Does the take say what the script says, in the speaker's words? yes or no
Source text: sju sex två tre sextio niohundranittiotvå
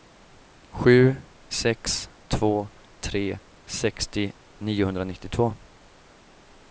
yes